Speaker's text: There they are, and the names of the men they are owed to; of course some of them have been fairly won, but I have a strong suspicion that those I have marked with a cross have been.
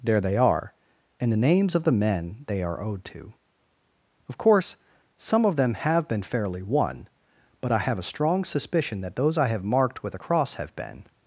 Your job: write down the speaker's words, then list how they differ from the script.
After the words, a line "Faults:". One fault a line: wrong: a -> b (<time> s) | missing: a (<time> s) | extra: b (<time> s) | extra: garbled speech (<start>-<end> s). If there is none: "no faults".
There they are, and the names of the men they are owed to; of course some of them have been fairly won, but I have a strong suspicion that those I have marked with a cross have been.
Faults:
no faults